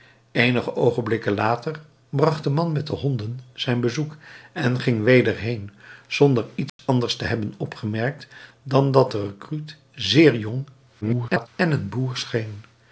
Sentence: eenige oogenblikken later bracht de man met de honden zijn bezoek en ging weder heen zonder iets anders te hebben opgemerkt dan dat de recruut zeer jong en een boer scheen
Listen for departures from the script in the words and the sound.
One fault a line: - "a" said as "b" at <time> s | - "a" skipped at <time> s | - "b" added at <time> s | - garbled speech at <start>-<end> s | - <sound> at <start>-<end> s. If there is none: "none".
- dropout at 6.7-6.8 s
- garbled speech at 11.0-11.5 s